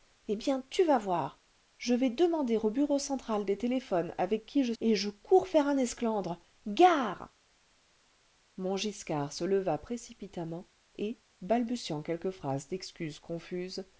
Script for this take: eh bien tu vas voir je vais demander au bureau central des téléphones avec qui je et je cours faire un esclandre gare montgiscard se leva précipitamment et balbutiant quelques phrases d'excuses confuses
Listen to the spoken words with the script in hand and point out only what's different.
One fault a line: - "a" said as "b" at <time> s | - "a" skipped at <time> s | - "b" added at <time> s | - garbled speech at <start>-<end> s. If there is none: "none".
none